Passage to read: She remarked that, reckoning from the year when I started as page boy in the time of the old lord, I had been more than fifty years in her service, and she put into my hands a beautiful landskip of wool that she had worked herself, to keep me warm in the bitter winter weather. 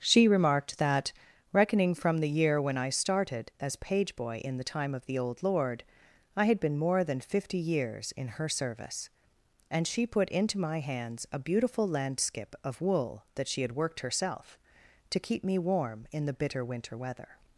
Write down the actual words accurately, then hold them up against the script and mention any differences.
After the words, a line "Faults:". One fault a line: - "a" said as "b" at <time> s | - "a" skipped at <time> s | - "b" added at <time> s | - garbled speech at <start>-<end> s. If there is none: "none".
She remarked that, reckoning from the year when I started as page boy in the time of the old lord, I had been more than fifty years in her service, and she put into my hands a beautiful landskip of wool that she had worked herself, to keep me warm in the bitter winter weather.
Faults:
none